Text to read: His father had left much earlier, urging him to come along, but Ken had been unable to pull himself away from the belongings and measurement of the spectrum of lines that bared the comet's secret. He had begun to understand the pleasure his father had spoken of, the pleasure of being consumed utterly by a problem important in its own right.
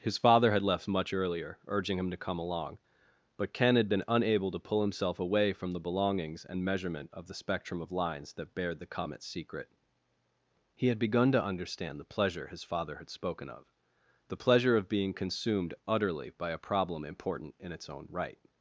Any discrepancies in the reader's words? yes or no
no